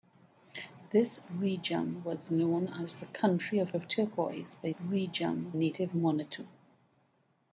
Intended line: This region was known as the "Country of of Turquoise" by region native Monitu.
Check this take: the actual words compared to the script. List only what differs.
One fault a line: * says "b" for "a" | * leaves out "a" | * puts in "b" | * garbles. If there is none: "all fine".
all fine